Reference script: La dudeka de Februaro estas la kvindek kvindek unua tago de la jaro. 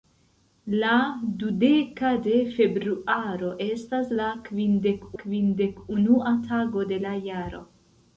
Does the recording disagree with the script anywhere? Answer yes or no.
no